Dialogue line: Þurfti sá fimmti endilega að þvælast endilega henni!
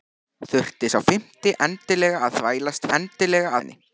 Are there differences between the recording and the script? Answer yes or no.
no